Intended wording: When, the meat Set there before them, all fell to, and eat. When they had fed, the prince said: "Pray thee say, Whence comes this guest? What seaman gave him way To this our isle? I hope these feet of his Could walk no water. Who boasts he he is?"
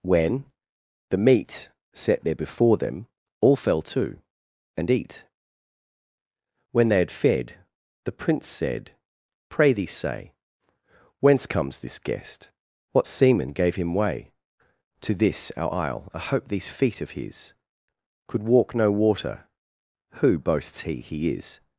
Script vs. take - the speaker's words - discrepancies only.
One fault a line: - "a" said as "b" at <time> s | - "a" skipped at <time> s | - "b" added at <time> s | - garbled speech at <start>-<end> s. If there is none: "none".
none